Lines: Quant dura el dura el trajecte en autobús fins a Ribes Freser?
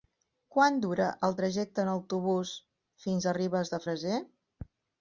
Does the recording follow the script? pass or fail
fail